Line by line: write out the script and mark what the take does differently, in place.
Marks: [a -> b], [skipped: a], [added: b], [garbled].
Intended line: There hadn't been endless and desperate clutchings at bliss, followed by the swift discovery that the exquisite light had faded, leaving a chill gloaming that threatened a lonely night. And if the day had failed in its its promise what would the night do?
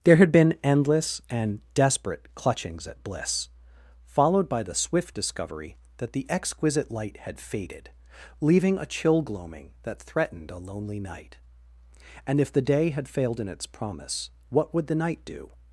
There [hadn't -> had] been endless and desperate clutchings at bliss, followed by the swift discovery that the exquisite light had faded, leaving a chill gloaming that threatened a lonely night. And if the day had failed in its [skipped: its] promise what would the night do?